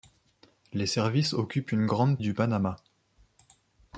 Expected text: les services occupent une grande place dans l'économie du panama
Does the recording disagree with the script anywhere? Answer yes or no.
yes